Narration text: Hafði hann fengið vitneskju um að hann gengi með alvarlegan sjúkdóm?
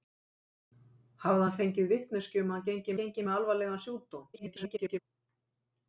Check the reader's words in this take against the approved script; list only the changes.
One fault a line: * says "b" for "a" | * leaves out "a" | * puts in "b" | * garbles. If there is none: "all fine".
* puts in "gengi"
* garbles